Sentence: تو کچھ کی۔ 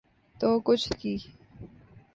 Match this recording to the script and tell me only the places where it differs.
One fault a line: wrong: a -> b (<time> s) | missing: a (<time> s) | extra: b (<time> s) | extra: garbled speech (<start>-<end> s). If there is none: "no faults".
no faults